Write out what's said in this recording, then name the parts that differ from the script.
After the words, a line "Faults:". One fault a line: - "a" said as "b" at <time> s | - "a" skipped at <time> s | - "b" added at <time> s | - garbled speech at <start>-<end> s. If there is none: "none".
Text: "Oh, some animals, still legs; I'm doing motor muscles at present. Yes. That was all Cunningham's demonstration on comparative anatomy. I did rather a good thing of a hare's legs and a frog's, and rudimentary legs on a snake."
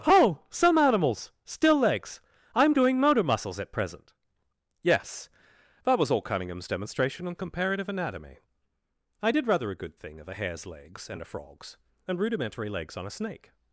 "Oh, some animals, still legs; I'm doing motor muscles at present. Yes. That was all Cunningham's demonstration on comparative anatomy. I did rather a good thing of a hare's legs and a frog's, and rudimentary legs on a snake."
Faults:
none